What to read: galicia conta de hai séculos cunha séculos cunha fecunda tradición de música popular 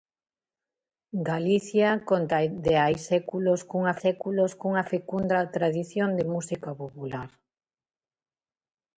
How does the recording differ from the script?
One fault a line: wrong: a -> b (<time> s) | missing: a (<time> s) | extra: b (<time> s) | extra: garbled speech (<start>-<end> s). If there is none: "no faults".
no faults